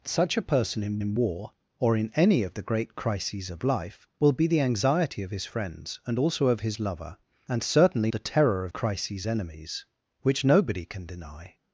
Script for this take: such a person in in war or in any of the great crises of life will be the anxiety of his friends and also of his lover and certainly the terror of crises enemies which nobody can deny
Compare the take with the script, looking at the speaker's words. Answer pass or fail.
pass